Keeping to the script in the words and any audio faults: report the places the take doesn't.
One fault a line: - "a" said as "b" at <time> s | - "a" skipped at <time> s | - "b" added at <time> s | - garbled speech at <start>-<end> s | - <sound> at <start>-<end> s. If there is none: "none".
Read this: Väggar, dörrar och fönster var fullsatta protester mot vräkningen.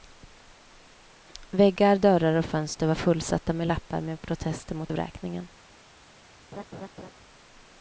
- "med lappar med" added at 3.5 s
- laugh at 6.5-7.1 s